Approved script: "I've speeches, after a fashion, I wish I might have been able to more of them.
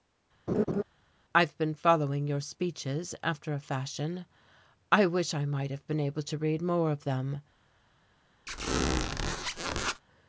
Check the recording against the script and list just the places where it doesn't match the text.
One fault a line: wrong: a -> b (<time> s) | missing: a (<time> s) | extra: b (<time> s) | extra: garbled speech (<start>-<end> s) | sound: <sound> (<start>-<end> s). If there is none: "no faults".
sound: laugh (0.5-0.8 s)
extra: been following your (1.6 s)
extra: read (6.4 s)
sound: squeak (8.5-10.0 s)